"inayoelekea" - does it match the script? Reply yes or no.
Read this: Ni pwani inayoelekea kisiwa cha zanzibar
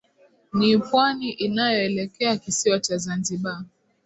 yes